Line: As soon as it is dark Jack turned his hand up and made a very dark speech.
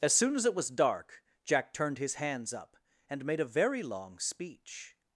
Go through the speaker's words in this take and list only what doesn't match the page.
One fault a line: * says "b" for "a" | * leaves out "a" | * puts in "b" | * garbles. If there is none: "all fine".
* says "was" for "is"
* says "hands" for "hand"
* says "long" for "dark"